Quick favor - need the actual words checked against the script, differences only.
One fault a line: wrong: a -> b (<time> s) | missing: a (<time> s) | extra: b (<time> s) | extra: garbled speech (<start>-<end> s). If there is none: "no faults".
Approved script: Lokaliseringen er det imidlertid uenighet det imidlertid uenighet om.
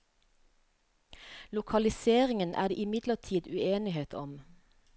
missing: det imidlertid uenighet (4.1 s)